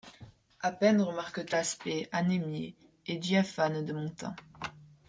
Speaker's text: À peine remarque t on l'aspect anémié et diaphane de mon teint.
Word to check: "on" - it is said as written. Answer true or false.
false